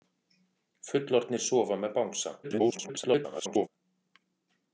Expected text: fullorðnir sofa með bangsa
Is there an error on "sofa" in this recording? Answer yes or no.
no